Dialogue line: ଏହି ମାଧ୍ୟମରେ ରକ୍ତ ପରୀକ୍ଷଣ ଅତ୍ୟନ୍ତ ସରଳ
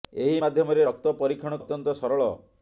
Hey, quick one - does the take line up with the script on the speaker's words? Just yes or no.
yes